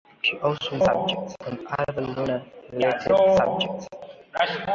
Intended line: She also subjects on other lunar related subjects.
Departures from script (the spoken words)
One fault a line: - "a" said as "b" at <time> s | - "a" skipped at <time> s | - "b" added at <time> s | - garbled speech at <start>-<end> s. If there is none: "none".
none